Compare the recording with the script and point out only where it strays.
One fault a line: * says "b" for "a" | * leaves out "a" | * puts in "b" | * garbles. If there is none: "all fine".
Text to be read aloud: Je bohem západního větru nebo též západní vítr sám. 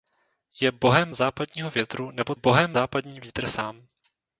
* says "bohem" for "též"